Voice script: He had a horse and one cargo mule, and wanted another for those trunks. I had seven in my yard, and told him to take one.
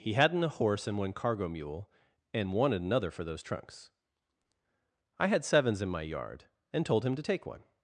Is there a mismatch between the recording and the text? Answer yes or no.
yes